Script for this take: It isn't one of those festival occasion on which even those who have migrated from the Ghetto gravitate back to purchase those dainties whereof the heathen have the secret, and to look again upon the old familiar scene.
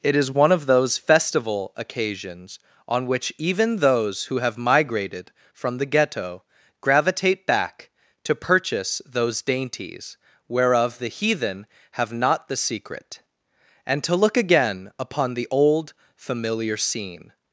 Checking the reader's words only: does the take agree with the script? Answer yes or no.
no